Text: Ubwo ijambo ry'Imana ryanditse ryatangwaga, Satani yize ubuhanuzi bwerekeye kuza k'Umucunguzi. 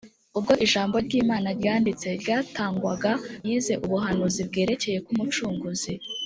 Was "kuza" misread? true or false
true